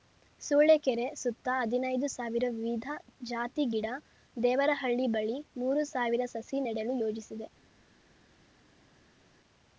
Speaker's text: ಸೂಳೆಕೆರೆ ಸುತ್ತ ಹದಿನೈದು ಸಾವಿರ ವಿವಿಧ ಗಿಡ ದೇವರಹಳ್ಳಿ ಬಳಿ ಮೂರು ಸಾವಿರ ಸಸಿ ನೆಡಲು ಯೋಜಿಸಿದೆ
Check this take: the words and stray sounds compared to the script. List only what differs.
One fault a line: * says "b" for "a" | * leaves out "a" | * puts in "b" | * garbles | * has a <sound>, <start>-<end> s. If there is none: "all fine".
* puts in "ಜಾತಿ"